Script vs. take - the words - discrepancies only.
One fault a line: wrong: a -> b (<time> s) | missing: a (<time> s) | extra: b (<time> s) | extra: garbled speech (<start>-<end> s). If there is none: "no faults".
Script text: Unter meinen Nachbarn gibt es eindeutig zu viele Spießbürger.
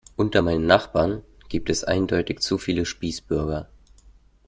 no faults